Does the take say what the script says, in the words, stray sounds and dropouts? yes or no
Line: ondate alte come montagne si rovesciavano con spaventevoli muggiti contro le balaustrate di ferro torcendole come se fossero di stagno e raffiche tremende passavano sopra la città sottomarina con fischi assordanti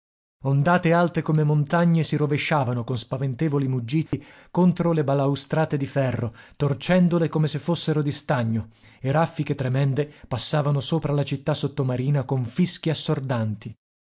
no